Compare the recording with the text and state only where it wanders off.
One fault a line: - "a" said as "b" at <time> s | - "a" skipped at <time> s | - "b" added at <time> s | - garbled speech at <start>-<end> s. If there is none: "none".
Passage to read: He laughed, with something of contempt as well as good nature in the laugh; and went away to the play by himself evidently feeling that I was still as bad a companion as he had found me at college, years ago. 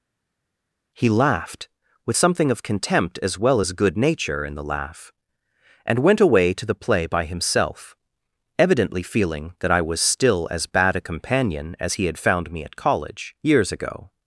none